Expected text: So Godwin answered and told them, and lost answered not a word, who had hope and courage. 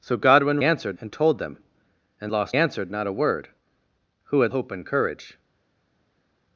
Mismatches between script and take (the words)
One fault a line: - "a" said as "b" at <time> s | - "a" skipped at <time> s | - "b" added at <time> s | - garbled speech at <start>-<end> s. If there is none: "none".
none